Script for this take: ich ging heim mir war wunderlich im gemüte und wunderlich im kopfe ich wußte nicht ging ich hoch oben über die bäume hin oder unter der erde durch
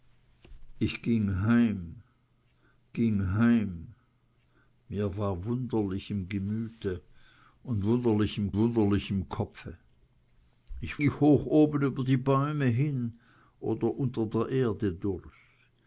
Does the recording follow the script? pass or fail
fail